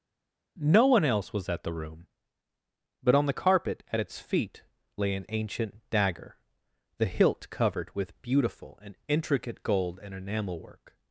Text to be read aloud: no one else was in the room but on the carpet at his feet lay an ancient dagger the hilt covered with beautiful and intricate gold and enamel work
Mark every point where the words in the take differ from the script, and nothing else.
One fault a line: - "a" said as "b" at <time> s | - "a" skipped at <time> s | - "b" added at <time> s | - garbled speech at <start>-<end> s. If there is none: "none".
- "in" said as "at" at 1.5 s
- "his" said as "its" at 4.0 s